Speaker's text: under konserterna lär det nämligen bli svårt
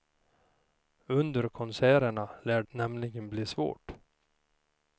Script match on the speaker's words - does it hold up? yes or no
no